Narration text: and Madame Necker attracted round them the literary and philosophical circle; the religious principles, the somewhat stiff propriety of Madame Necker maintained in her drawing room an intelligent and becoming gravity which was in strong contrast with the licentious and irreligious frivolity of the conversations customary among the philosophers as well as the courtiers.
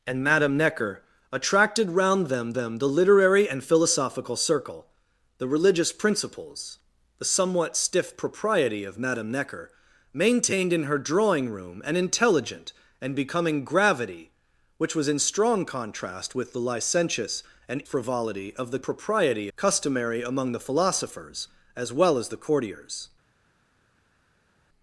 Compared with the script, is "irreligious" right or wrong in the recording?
wrong